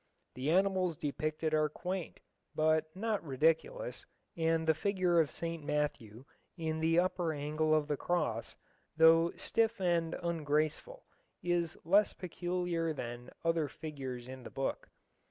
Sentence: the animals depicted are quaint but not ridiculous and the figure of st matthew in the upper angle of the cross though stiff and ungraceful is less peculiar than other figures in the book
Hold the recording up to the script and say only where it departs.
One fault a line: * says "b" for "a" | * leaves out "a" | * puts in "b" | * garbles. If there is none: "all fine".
all fine